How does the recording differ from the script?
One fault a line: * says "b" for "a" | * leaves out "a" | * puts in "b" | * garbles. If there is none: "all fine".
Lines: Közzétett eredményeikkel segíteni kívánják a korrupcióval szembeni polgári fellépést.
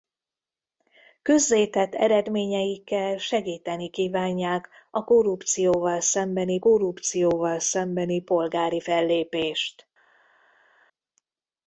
* puts in "korrupcióval szembeni"